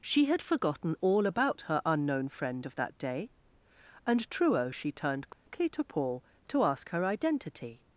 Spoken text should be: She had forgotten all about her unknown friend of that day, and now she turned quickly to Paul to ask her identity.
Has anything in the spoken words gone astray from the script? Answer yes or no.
yes